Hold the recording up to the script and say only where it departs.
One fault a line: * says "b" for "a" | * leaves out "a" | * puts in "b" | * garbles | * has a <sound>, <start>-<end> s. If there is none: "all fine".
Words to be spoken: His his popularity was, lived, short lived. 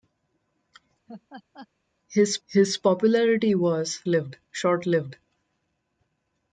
* has a laugh, 1.1-1.7 s